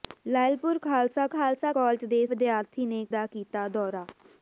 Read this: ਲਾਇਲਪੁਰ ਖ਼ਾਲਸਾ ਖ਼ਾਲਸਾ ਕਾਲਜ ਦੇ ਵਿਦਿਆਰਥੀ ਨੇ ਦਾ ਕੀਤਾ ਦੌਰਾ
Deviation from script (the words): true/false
false